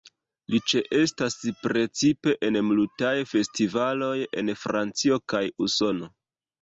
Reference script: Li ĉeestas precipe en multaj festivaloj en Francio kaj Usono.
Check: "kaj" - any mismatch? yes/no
no